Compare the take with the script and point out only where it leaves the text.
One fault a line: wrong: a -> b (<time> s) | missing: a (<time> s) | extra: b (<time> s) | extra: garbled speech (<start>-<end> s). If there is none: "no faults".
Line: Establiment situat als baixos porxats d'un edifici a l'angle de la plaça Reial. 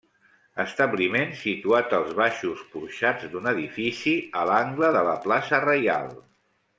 no faults